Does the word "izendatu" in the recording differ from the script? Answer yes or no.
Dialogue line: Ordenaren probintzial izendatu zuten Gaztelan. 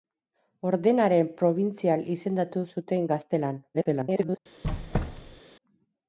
no